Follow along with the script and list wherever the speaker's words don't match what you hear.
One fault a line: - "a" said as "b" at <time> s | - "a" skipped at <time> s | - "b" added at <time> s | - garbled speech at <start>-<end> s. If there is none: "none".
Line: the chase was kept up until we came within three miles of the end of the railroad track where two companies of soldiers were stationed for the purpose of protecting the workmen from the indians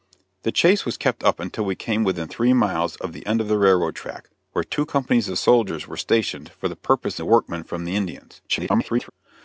- "of protecting" skipped at 7.2 s
- garbled speech at 8.5-9.1 s